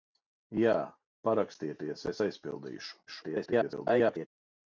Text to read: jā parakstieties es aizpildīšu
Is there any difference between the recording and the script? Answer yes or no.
yes